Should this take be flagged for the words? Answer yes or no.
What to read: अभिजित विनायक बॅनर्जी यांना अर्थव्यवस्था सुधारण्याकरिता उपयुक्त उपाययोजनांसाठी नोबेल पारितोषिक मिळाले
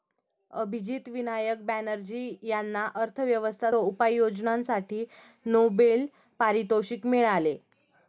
yes